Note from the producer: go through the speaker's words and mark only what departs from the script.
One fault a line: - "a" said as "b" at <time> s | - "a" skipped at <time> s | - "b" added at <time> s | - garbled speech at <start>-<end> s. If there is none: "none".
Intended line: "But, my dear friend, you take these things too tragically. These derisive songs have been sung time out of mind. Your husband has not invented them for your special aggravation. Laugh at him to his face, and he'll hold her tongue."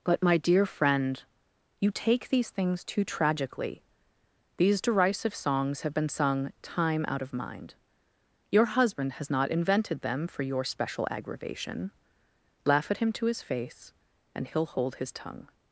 - "her" said as "his" at 15.0 s